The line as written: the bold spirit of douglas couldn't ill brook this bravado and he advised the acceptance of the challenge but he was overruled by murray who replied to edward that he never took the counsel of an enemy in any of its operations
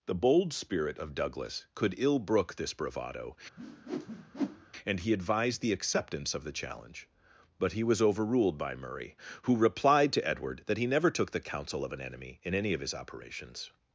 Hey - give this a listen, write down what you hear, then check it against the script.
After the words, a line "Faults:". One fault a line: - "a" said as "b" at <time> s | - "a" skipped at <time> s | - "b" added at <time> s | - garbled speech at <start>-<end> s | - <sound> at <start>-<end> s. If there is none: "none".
the bold spirit of douglas could ill brook this bravado and he advised the acceptance of the challenge but he was overruled by murray who replied to edward that he never took the counsel of an enemy in any of his operations
Faults:
- "couldn't" said as "could" at 1.8 s
- whoosh at 3.6-4.7 s
- "its" said as "his" at 12.8 s